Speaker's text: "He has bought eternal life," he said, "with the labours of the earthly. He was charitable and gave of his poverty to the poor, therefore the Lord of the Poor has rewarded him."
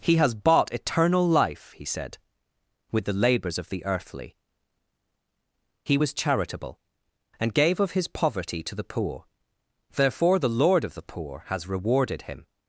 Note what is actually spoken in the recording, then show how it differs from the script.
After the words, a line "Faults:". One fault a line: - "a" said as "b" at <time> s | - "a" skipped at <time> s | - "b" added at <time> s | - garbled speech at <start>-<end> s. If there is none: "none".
"He has bought eternal life," he said, "with the labours of the earthly. He was charitable and gave of his poverty to the poor, therefore the Lord of the Poor has rewarded him."
Faults:
none